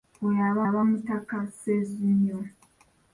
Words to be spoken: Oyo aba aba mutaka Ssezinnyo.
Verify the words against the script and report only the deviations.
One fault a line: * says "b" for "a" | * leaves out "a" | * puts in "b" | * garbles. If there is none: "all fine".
all fine